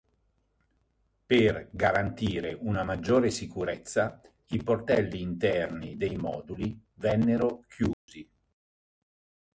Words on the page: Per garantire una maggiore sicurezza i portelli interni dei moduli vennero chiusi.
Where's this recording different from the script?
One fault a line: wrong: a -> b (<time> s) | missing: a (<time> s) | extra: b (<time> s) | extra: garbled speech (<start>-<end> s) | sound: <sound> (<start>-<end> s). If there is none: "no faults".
sound: dropout (7.9-8.1 s)